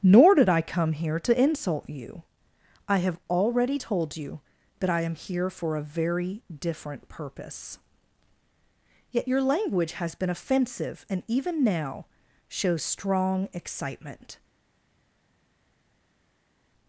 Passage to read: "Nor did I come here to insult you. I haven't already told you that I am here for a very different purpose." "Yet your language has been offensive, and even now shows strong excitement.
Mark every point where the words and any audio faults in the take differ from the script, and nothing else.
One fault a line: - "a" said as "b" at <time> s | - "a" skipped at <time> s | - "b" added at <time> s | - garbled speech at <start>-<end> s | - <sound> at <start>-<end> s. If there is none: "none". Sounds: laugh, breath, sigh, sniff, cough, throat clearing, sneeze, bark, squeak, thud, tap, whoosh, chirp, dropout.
- "haven't" said as "have" at 3.0 s